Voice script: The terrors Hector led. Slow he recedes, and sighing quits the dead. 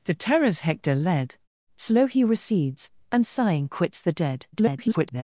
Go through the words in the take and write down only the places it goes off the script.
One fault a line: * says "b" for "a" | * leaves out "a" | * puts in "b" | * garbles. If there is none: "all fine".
* garbles